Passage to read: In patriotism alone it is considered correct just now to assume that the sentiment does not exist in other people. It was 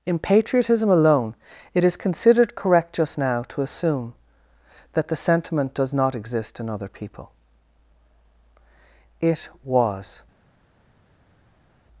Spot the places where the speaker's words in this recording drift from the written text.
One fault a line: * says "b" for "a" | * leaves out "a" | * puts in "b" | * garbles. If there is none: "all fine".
all fine